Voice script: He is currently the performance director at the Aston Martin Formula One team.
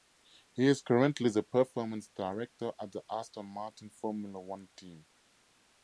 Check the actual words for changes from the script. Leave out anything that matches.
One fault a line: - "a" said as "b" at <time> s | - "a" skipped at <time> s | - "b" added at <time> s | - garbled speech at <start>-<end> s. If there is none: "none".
none